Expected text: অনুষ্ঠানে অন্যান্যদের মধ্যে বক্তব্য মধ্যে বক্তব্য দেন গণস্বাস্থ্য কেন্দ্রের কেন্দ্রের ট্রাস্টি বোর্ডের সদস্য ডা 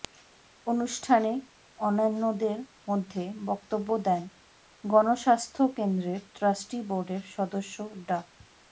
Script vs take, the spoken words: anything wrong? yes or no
yes